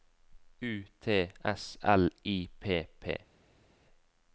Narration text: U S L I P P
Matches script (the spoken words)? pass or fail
fail